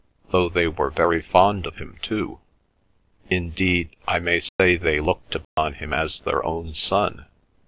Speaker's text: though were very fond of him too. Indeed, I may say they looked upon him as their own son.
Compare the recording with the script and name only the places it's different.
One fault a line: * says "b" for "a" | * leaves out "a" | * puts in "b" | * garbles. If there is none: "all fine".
* puts in "they"